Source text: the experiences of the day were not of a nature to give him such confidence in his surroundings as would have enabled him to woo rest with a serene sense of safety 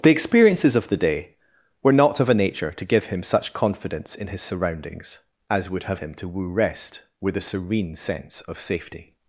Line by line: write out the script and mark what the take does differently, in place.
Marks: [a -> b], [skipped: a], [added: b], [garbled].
the experiences of the day were not of a nature to give him such confidence in his surroundings as would have [skipped: enabled] him to woo rest with a serene sense of safety